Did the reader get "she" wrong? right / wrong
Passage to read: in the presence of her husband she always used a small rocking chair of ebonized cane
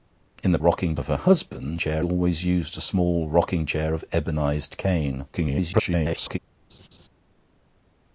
wrong